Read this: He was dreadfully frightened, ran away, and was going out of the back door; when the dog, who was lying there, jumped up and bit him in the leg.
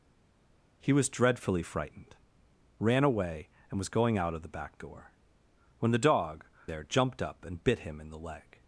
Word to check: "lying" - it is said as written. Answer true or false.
false